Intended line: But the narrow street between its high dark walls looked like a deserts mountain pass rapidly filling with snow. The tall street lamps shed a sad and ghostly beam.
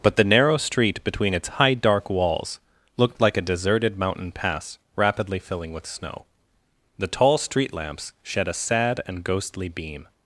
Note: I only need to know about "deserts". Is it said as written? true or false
false